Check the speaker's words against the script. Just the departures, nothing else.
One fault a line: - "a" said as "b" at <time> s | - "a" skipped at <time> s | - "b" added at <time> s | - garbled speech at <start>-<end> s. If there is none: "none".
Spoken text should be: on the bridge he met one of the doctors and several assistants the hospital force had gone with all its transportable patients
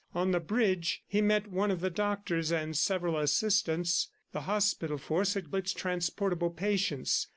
- "gone with all" skipped at 5.5 s